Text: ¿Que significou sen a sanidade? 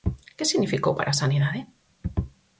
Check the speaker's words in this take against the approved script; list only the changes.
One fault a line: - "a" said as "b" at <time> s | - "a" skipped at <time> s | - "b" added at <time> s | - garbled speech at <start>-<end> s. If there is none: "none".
- "sen" said as "para" at 1.0 s